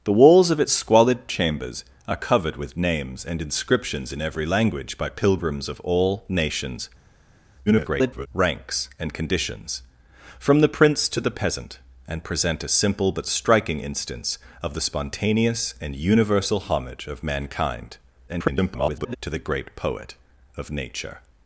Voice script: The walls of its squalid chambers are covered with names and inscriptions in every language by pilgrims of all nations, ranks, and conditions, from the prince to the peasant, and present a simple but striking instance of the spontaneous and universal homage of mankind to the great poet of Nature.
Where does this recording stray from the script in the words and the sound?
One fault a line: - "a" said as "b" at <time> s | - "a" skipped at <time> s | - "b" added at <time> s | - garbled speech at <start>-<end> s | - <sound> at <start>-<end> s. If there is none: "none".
- garbled speech at 7.7-8.3 s
- garbled speech at 18.3-19.2 s